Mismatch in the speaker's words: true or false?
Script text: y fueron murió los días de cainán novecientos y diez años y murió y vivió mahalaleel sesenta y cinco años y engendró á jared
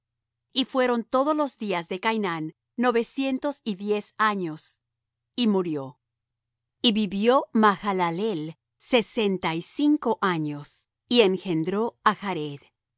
true